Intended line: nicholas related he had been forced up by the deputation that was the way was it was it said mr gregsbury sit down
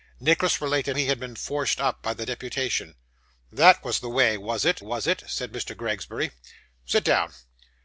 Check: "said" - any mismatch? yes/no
no